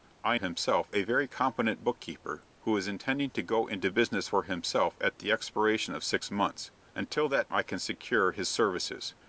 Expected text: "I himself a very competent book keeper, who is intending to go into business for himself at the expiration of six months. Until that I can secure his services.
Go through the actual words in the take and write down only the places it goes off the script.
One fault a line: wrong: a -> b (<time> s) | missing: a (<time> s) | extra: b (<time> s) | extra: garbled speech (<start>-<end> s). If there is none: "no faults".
no faults